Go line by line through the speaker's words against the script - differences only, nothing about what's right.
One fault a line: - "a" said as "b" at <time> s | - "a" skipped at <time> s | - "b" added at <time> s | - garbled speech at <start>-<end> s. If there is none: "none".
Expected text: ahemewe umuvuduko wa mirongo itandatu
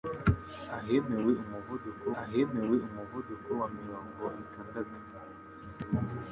- "ahemewe umuvuduko" added at 2.2 s